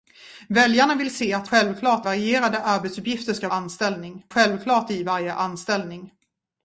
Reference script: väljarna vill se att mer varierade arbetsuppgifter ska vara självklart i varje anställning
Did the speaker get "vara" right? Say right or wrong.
wrong